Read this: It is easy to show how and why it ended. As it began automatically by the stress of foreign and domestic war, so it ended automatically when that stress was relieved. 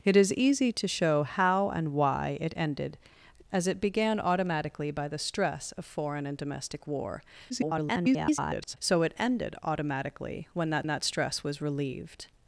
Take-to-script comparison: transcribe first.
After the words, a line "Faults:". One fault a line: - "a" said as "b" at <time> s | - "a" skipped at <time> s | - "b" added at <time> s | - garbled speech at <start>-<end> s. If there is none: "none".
It is easy to show how and why it ended. As it began automatically by the stress of foreign and domestic war, [garbled] so it ended automatically when that that stress was relieved.
Faults:
- garbled speech at 7.5-8.8 s
- "that" added at 10.9 s